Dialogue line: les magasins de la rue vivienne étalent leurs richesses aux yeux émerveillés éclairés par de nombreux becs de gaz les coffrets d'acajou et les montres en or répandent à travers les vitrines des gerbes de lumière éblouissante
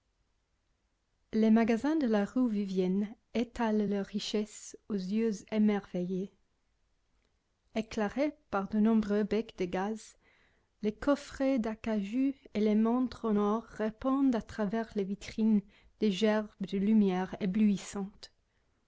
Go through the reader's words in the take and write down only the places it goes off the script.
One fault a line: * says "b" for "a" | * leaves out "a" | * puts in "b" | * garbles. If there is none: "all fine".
all fine